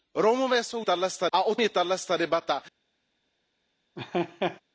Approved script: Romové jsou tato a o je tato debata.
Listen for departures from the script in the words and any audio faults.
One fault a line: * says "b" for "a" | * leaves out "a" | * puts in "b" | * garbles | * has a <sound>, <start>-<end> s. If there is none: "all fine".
* has a laugh, 4.0-4.6 s